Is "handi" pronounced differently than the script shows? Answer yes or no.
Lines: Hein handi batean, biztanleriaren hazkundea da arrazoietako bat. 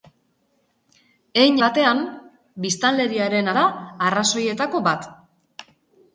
yes